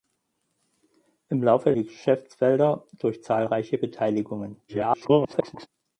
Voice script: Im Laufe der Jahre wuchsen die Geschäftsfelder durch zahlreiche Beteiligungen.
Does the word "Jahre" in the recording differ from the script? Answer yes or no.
yes